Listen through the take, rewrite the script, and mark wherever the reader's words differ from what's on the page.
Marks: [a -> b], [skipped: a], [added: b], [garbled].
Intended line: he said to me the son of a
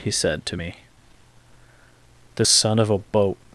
he said to me the son of a [added: boat]